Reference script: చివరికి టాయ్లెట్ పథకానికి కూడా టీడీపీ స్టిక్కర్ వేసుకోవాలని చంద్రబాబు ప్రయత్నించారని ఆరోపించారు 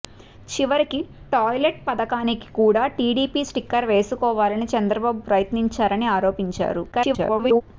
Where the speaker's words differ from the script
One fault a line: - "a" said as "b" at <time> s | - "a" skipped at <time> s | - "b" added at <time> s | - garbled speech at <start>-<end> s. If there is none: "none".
- garbled speech at 6.9-7.6 s